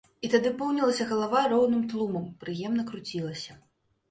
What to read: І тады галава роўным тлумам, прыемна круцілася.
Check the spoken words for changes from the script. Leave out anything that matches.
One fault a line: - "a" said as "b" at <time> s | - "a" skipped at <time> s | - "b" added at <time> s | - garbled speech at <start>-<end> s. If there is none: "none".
- "поўнілася" added at 0.6 s